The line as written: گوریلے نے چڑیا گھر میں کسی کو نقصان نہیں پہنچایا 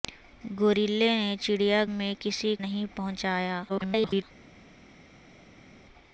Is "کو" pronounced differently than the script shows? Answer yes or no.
yes